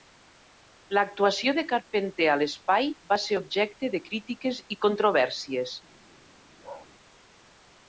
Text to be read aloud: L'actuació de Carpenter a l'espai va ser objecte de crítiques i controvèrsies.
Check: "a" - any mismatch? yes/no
no